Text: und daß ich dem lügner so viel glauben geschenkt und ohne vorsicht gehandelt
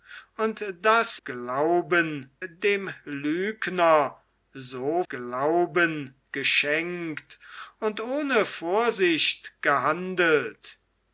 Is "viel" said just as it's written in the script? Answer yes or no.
no